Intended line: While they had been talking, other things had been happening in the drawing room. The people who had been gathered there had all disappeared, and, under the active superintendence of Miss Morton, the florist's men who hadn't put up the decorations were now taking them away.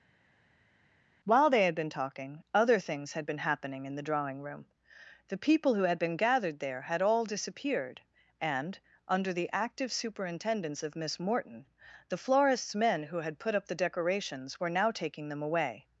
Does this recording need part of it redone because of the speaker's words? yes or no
yes